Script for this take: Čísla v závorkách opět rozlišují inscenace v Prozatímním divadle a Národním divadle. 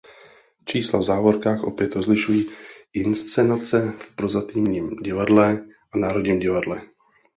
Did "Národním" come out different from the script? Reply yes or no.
no